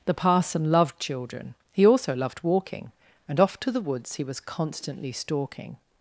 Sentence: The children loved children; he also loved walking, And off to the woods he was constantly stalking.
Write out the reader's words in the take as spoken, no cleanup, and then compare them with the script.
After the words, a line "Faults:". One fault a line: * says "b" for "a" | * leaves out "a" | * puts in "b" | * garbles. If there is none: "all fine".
The parson loved children; he also loved walking, And off to the woods he was constantly stalking.
Faults:
* says "parson" for "children"